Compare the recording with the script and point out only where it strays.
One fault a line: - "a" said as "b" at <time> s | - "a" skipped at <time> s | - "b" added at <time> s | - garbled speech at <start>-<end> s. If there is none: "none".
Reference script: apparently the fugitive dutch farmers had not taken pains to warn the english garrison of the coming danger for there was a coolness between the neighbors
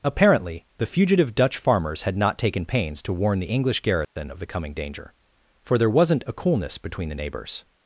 - "was" said as "wasn't" at 5.9 s